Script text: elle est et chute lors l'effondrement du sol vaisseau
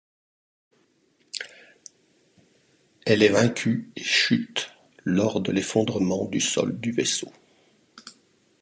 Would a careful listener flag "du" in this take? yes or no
no